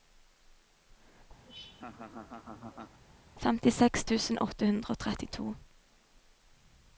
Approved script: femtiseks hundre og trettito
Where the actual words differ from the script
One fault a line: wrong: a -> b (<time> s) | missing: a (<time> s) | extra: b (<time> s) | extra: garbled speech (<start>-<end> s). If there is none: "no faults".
extra: tusen åtte (4.1 s)